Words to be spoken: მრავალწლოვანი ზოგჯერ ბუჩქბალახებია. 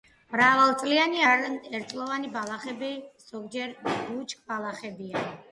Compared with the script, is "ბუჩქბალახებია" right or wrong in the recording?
right